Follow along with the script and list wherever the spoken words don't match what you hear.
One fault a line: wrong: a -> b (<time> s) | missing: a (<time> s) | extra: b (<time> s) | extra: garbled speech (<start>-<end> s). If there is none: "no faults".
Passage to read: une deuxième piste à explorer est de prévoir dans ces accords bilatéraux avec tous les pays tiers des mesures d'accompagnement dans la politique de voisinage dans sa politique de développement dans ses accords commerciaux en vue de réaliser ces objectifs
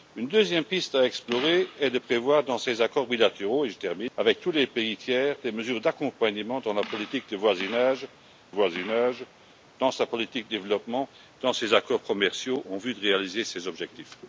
extra: voisinage (8.5 s)